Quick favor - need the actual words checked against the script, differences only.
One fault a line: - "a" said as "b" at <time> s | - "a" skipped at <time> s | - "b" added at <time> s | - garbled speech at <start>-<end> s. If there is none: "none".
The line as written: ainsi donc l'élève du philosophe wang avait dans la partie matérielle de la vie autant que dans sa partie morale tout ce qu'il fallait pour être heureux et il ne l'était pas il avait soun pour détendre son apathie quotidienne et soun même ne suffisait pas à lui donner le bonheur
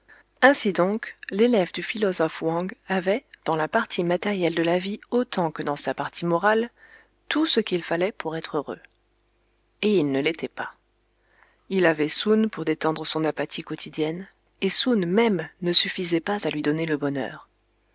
none